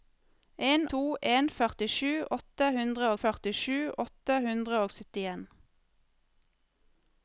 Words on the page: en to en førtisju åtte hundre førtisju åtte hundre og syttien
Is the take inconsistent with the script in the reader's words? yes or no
no